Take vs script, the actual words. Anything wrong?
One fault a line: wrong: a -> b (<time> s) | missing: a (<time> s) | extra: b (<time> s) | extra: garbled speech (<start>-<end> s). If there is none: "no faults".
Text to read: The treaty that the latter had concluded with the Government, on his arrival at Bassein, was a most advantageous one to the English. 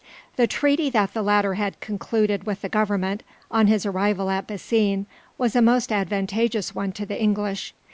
no faults